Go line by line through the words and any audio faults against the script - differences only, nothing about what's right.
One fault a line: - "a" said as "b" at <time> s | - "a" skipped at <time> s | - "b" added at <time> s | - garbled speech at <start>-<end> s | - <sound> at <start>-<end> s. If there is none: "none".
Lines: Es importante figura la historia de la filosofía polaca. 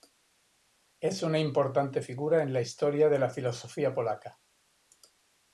- "una" added at 1.2 s
- "en" added at 2.4 s